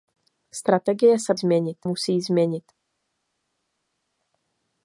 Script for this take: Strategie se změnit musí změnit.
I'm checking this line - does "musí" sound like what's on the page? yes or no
yes